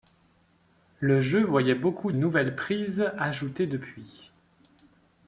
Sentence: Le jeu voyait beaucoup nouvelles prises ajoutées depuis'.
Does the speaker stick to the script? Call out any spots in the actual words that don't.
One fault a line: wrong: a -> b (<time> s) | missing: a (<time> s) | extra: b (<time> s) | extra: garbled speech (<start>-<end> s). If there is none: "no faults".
no faults